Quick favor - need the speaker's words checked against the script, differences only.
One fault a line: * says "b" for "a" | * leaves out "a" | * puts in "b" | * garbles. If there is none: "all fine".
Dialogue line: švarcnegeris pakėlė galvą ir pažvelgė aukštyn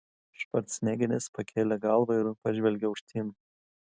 all fine